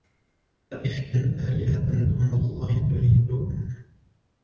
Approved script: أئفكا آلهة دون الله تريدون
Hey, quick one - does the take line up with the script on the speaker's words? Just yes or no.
yes